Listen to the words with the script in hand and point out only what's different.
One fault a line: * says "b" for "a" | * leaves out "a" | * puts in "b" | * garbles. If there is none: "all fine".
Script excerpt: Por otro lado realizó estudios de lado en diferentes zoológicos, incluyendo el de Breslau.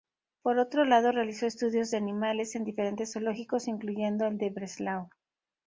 * says "animales" for "lado"